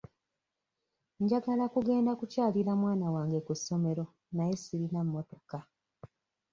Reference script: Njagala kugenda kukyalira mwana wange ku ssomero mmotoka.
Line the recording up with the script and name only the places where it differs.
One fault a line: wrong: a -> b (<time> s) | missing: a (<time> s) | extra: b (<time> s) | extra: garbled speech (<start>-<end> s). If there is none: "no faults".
extra: naye sirina (4.4 s)